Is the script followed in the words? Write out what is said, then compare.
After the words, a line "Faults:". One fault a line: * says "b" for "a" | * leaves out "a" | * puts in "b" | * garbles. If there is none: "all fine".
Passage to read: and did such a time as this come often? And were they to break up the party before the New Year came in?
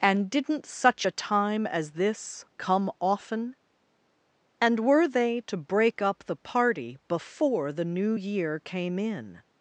and didn't such a time as this come often? And were they to break up the party before the New Year came in?
Faults:
* says "didn't" for "did"